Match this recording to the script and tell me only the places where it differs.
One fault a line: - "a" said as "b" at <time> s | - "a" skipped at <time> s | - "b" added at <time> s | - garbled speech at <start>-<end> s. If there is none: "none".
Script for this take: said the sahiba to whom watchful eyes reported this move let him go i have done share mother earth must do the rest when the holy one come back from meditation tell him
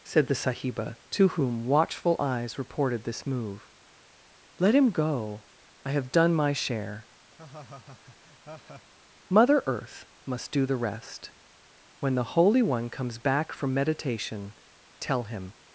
- "my" added at 6.3 s
- "come" said as "comes" at 12.9 s